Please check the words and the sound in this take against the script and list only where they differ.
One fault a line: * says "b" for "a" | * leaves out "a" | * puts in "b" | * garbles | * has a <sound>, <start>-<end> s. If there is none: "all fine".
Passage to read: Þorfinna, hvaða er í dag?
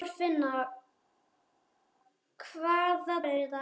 all fine